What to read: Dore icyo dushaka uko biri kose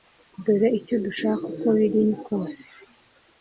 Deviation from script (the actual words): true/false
false